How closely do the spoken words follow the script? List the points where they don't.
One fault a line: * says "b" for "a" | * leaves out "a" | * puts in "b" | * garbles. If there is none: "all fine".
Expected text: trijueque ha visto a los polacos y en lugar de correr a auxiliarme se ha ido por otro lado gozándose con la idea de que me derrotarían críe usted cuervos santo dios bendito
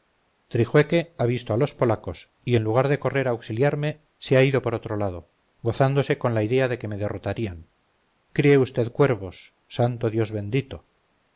all fine